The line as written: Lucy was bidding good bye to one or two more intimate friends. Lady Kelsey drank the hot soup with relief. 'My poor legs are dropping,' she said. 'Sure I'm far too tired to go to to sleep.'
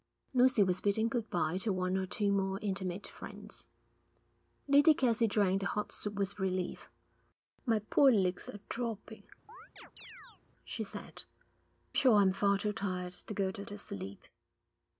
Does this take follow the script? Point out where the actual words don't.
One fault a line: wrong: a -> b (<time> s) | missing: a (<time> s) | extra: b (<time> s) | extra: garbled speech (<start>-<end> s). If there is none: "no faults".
no faults